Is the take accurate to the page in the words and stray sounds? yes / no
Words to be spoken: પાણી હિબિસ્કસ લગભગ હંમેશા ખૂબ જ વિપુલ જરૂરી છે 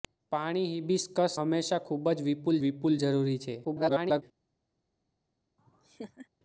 no